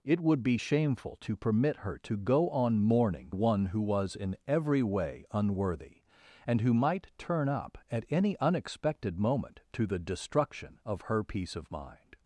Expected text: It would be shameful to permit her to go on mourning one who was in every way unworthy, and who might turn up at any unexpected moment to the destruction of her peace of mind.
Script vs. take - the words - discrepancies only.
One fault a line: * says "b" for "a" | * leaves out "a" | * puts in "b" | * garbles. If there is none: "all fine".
all fine